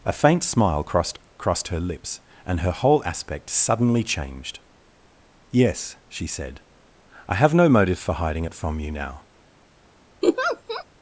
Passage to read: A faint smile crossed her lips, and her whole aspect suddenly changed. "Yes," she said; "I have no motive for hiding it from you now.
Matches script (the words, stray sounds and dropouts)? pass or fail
fail